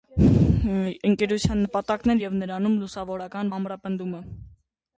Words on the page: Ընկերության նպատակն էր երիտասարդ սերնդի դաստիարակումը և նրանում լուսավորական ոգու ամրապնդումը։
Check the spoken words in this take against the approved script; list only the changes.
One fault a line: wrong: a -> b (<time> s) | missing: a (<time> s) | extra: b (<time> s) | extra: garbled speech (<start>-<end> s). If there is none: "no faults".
missing: երիտասարդ սերնդի դաստիարակումը (2.2 s)
missing: ոգու (3.5 s)